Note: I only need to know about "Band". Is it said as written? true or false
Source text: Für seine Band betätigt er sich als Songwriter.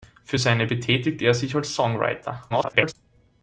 false